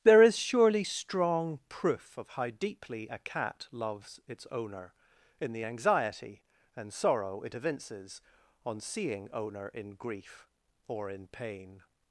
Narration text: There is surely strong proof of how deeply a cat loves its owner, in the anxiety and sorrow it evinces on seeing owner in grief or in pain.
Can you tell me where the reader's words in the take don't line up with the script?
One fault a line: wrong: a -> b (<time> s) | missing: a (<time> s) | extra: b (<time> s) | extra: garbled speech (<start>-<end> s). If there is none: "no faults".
no faults